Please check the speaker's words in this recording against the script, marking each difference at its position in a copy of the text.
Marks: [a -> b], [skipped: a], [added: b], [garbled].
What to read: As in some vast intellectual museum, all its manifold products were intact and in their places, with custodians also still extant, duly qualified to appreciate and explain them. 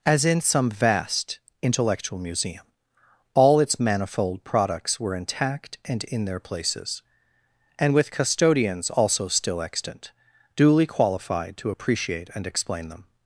As in some vast intellectual museum, all its manifold products were intact and in their places, [added: and] with custodians also still extant, duly qualified to appreciate and explain them.